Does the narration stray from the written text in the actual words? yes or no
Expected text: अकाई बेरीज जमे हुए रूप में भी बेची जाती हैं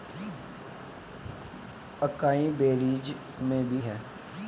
yes